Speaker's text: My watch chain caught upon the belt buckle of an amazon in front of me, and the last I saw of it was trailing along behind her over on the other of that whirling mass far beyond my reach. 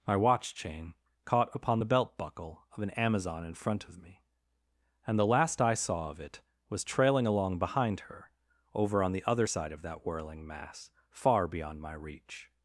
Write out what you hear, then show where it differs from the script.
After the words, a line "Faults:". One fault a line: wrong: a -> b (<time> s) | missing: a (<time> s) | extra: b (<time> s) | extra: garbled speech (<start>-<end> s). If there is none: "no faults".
My watch chain caught upon the belt buckle of an amazon in front of me, and the last I saw of it was trailing along behind her over on the other side of that whirling mass far beyond my reach.
Faults:
extra: side (9.4 s)